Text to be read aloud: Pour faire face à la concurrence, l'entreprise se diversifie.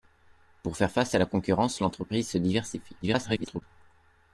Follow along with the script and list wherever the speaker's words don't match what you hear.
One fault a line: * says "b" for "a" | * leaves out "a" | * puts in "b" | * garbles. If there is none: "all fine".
* garbles